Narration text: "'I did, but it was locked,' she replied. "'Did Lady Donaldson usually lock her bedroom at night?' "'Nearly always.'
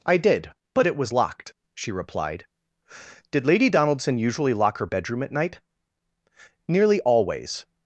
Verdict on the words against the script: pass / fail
pass